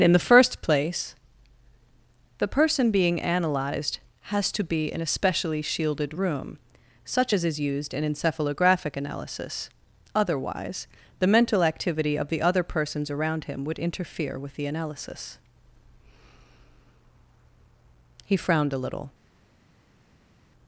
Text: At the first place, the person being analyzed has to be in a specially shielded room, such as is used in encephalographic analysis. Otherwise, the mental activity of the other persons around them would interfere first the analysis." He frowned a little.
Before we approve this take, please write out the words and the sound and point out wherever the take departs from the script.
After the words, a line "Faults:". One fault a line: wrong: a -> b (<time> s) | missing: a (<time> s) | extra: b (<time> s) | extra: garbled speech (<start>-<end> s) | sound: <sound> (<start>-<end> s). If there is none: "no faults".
In the first place, the person being analyzed has to be in a specially shielded room, such as is used in encephalographic analysis. Otherwise, the mental activity of the other persons around him would interfere with the analysis." He frowned a little.
Faults:
wrong: At -> In (0.0 s)
wrong: them -> him (13.4 s)
wrong: first -> with (14.4 s)